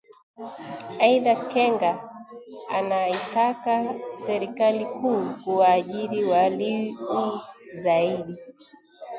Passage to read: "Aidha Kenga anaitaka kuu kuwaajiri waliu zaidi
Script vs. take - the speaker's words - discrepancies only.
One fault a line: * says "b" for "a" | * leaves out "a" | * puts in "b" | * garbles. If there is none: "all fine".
* puts in "serikali"